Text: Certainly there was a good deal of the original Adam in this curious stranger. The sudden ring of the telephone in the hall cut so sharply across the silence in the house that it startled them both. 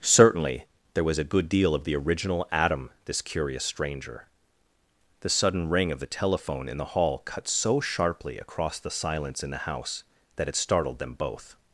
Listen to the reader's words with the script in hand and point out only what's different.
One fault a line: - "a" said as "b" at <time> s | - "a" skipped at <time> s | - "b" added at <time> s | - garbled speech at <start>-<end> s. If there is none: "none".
- "in" skipped at 2.9 s